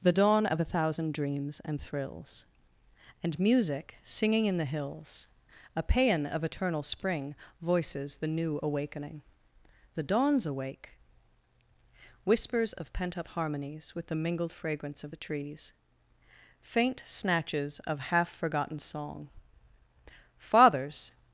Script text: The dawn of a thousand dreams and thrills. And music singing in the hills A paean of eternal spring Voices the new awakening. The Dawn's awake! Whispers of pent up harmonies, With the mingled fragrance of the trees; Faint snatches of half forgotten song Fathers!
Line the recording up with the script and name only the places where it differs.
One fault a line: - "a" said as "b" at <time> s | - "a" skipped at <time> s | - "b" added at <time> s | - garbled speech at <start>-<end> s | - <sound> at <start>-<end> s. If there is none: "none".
none